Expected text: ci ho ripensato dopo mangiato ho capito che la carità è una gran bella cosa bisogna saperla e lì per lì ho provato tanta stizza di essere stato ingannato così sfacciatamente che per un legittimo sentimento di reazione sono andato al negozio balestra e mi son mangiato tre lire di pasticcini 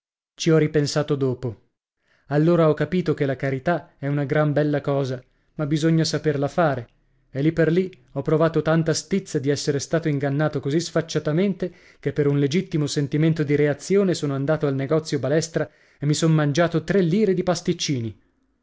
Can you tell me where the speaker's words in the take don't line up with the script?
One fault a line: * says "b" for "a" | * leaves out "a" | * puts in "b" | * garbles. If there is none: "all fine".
* says "allora" for "mangiato"
* puts in "ma"
* puts in "fare"